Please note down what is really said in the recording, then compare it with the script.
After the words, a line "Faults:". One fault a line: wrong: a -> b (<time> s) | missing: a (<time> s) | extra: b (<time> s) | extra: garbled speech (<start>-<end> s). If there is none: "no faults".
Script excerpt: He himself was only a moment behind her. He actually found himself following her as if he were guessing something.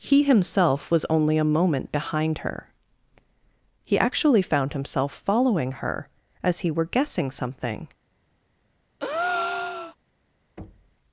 He himself was only a moment behind her. He actually found himself following her as he were guessing something.
Faults:
missing: if (6.6 s)